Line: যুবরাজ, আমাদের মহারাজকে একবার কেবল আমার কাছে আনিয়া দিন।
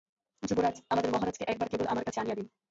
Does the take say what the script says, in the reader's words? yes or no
yes